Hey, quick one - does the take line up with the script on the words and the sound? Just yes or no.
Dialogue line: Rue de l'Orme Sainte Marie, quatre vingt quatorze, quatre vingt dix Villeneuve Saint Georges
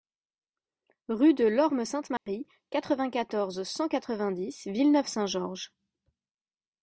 no